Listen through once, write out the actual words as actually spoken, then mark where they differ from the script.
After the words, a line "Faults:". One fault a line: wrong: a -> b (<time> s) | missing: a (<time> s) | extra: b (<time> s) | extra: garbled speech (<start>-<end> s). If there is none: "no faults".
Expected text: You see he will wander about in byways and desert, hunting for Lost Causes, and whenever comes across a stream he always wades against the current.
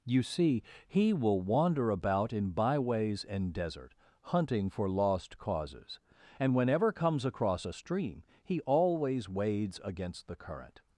You see he will wander about in byways and desert, hunting for Lost Causes, and whenever comes across a stream he always wades against the current.
Faults:
no faults